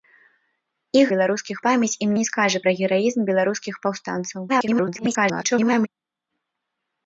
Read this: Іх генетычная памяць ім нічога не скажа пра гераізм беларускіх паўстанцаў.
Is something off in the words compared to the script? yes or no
yes